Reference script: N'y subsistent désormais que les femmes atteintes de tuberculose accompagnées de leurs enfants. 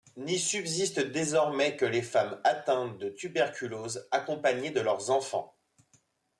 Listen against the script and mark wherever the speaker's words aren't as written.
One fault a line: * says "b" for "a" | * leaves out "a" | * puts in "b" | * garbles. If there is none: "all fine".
all fine